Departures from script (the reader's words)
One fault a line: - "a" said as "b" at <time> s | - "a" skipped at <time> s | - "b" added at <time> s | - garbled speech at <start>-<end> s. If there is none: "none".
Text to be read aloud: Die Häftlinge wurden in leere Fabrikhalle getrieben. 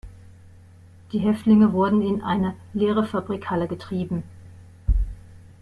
- "eine" added at 2.2 s